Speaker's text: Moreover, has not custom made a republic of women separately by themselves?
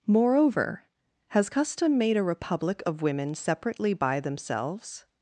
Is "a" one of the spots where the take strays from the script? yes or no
no